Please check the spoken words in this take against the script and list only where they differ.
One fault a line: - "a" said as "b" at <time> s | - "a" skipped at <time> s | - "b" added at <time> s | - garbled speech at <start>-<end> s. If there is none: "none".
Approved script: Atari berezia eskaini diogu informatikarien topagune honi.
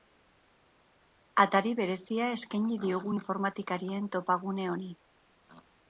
none